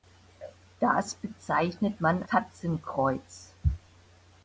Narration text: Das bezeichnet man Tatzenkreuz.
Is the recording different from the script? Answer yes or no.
no